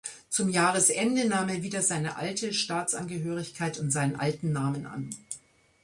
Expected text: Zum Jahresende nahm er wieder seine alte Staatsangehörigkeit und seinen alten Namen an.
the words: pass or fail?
pass